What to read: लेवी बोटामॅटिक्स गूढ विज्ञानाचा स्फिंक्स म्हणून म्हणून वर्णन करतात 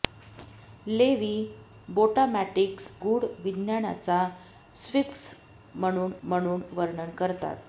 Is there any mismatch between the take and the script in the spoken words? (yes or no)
no